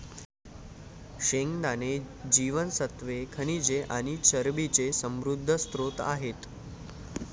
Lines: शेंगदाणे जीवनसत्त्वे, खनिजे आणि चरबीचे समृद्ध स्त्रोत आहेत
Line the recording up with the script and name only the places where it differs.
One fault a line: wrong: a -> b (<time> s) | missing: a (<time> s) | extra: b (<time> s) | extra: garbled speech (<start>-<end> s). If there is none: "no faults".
no faults